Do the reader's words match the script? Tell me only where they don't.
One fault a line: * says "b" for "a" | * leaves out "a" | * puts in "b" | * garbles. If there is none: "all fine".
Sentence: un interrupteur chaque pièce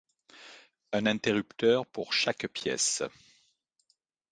* puts in "pour"